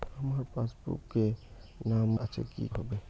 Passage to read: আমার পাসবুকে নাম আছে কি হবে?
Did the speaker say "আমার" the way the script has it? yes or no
yes